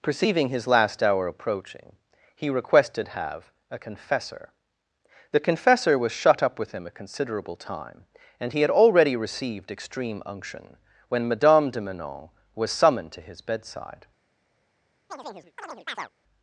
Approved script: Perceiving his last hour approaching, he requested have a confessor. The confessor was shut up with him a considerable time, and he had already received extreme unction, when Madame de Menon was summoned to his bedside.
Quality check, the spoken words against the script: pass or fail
pass